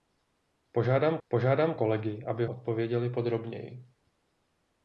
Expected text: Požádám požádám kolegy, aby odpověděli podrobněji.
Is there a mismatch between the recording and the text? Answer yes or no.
no